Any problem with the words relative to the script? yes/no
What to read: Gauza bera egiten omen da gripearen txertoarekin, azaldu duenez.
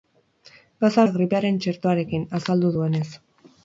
yes